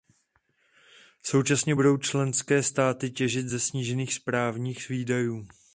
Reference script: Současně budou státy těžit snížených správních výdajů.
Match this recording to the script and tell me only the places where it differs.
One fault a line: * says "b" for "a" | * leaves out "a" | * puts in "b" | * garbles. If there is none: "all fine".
* puts in "členské"
* puts in "ze"